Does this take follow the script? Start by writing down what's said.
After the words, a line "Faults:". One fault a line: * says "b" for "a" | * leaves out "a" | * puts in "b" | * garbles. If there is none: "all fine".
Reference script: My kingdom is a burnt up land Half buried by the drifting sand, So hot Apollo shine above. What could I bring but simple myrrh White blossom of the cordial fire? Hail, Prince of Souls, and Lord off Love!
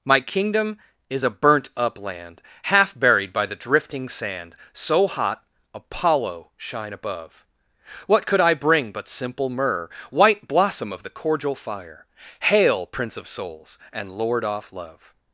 My kingdom is a burnt up land Half buried by the drifting sand, So hot Apollo shine above. What could I bring but simple myrrh White blossom of the cordial fire? Hail, Prince of Souls, and Lord off Love!
Faults:
all fine